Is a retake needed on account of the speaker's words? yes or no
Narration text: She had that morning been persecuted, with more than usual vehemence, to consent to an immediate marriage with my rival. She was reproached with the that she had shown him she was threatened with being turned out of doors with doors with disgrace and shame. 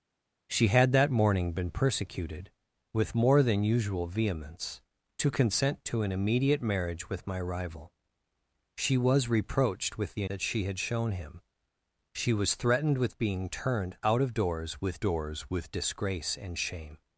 no